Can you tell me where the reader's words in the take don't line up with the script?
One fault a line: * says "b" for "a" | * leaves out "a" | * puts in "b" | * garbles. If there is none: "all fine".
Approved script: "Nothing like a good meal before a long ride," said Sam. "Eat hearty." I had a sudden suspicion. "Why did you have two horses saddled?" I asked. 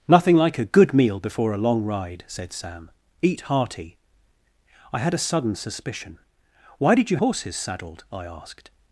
* leaves out "have two"